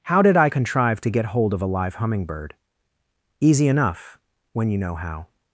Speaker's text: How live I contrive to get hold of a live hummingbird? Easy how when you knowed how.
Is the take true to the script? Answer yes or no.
no